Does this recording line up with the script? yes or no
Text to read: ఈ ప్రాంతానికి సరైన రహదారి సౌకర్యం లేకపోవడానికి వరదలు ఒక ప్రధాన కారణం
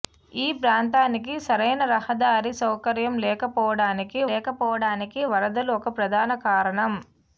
no